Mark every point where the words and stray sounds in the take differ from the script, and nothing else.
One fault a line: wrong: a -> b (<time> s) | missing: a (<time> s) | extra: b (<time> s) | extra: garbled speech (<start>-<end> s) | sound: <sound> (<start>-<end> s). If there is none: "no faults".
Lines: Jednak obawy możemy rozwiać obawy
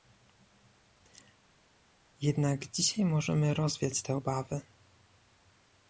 wrong: obawy -> dzisiaj (2.7 s)
extra: te (4.0 s)